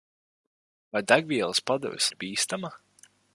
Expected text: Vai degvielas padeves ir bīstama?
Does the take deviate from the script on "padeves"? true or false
false